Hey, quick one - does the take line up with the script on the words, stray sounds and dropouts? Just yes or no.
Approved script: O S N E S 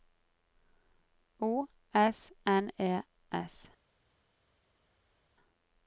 yes